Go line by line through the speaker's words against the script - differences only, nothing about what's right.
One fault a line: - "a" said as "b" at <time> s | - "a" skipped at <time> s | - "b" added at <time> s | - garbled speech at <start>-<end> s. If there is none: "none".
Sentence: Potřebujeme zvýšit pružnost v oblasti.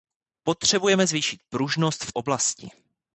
none